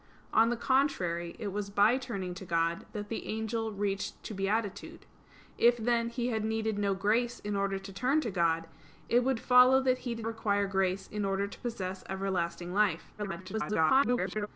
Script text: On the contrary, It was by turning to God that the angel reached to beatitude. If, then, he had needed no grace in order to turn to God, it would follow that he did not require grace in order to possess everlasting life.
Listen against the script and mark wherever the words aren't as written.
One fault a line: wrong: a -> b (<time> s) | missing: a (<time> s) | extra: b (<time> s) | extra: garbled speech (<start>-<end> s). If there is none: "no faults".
missing: not (10.3 s)
extra: garbled speech (13.2-14.5 s)